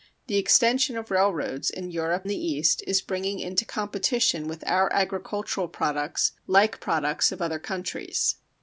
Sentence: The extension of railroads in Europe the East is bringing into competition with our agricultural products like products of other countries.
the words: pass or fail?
pass